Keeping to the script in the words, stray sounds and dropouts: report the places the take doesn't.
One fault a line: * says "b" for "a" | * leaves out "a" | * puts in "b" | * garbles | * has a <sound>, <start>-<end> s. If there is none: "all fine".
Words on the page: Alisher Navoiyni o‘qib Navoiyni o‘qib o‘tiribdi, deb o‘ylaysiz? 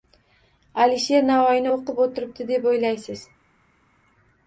* leaves out "Navoiyni o‘qib"